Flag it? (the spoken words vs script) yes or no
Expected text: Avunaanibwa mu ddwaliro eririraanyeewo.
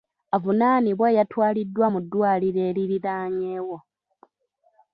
yes